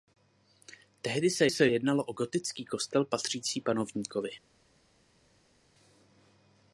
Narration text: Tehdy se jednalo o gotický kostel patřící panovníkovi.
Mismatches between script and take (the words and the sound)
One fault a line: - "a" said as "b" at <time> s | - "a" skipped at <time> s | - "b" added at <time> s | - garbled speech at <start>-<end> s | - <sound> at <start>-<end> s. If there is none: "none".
- "se" added at 1.5 s